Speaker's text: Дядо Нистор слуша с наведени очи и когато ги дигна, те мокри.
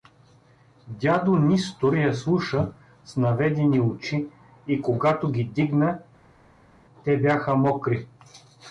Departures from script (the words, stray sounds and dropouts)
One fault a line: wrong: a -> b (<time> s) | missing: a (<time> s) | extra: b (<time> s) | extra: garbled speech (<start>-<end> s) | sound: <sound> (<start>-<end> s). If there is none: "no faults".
extra: я (1.9 s)
extra: бяха (7.2 s)